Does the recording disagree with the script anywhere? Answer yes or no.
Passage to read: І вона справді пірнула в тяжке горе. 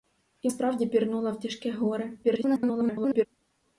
yes